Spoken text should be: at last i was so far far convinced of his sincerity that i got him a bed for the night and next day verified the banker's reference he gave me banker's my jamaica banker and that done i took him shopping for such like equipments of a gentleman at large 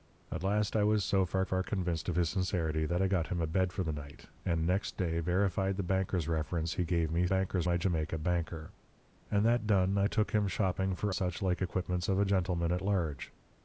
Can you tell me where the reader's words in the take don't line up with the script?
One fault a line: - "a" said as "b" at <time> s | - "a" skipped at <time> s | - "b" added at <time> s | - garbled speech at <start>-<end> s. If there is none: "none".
none